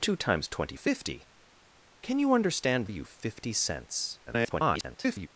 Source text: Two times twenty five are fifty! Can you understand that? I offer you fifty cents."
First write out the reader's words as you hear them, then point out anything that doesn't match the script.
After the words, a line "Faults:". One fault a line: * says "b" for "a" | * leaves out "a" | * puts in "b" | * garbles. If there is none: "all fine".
Two times twenty fifty! Can you understand you fifty cents." [garbled]
Faults:
* leaves out "five are"
* leaves out "that I offer"
* garbles